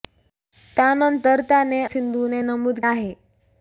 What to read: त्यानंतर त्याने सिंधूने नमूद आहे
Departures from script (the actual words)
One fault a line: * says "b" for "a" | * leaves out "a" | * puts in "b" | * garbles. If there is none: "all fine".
all fine